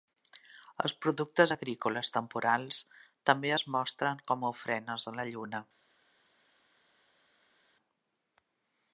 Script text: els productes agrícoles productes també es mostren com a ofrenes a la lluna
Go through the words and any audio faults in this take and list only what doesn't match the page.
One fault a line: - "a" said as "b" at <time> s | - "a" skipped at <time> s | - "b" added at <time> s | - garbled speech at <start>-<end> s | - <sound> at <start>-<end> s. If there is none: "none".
- "productes" said as "temporals" at 2.2 s